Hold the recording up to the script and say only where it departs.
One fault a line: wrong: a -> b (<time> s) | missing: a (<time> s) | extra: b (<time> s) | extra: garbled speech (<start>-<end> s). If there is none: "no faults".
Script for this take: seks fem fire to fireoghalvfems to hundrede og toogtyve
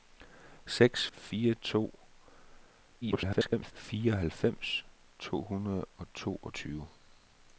missing: fem (1.1 s)
extra: garbled speech (3.0-3.7 s)